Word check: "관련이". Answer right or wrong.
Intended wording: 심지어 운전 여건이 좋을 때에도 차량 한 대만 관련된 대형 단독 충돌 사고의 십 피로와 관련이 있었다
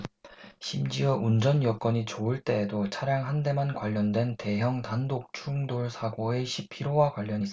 right